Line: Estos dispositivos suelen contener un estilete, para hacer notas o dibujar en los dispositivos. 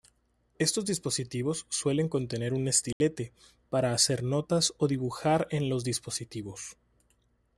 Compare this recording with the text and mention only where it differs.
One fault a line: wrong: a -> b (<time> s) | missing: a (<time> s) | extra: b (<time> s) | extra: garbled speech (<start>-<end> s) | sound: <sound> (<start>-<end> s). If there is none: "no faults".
sound: dropout (2.9-3.0 s)